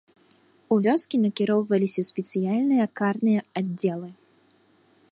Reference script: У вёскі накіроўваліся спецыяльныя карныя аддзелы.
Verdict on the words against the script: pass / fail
pass